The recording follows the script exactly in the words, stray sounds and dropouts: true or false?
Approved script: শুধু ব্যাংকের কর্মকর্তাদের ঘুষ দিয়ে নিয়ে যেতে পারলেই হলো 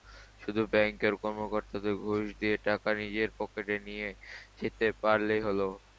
false